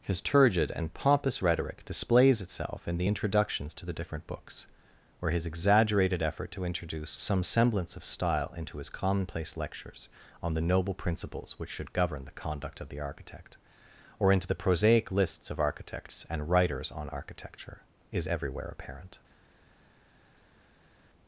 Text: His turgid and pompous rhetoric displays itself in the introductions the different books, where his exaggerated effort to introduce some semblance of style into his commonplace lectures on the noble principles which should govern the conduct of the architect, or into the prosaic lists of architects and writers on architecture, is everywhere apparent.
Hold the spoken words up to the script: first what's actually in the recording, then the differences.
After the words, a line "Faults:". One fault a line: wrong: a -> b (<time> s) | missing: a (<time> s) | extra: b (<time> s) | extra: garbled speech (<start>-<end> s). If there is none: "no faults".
His turgid and pompous rhetoric displays itself in the introductions to the different books, where his exaggerated effort to introduce some semblance of style into his commonplace lectures on the noble principles which should govern the conduct of the architect, or into the prosaic lists of architects and writers on architecture, is everywhere apparent.
Faults:
extra: to (3.7 s)